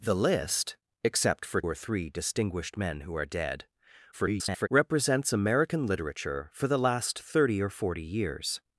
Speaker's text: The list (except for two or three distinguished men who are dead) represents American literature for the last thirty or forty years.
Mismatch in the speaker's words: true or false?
true